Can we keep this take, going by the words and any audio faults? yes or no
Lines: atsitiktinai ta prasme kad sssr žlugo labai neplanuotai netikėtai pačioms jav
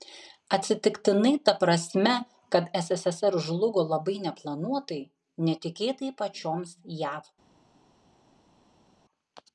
yes